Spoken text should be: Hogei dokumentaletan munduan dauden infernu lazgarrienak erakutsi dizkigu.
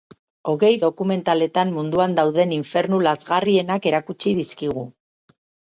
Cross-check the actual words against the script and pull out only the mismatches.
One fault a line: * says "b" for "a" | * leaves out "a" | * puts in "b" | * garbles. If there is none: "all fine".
all fine